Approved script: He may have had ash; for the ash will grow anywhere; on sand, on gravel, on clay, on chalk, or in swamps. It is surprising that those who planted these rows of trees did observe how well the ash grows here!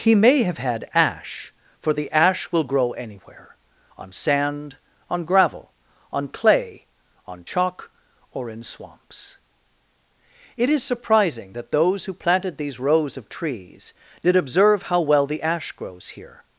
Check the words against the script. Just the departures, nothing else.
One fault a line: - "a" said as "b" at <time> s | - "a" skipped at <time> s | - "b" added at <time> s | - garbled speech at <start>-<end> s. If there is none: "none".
none